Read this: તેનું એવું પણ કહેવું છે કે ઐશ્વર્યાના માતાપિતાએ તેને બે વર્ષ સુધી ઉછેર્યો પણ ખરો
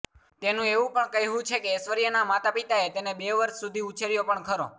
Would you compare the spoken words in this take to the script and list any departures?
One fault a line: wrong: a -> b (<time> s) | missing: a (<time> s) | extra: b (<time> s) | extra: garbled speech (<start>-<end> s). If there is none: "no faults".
no faults